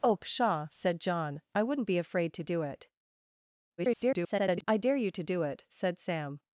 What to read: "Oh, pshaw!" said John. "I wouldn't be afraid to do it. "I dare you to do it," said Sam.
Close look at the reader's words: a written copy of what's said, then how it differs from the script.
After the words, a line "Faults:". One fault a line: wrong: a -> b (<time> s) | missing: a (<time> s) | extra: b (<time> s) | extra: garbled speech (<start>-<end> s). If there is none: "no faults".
"Oh, pshaw!" said John. "I wouldn't be afraid to do it. [garbled] "I dare you to do it," said Sam.
Faults:
extra: garbled speech (3.8-4.6 s)